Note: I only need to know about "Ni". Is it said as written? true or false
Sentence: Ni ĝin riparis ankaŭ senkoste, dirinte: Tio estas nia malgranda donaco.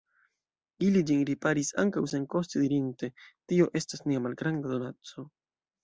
false